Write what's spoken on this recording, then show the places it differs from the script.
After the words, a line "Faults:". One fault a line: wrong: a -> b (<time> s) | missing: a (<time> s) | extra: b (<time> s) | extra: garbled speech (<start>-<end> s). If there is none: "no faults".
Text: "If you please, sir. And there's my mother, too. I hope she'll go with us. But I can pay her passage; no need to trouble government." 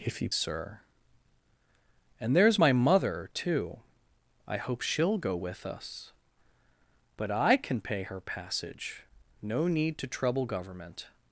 "If you sir. And there's my mother, too. I hope she'll go with us. But I can pay her passage; no need to trouble government."
Faults:
missing: please (0.3 s)